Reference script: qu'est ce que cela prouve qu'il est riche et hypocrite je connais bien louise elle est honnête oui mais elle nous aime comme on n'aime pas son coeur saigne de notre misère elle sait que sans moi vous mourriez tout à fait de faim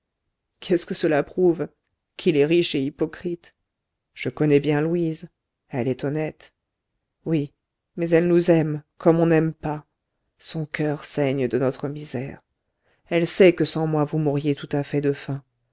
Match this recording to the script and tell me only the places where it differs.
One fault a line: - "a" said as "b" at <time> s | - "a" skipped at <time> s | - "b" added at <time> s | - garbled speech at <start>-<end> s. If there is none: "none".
none